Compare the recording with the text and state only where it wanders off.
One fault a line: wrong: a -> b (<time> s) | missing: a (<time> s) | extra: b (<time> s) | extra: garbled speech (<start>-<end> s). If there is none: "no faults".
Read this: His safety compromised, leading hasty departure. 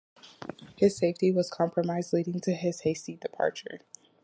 extra: was (1.3 s)
extra: to his (2.4 s)